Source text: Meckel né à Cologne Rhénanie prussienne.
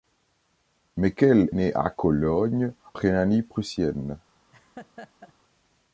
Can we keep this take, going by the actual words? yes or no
yes